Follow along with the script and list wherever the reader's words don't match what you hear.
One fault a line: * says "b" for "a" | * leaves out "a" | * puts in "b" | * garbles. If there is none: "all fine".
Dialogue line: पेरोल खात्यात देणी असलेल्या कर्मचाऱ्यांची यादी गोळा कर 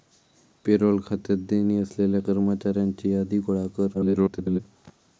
* garbles